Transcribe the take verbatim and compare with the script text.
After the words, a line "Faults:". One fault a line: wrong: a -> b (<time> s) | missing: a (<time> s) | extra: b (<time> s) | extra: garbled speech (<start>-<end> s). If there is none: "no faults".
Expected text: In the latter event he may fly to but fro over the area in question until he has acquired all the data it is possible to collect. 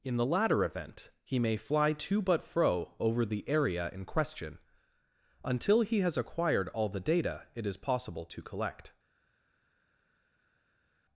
In the latter event he may fly to but fro over the area in question until he has acquired all the data it is possible to collect.
Faults:
no faults